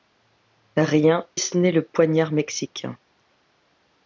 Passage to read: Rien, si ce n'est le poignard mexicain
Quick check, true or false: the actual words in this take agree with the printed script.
false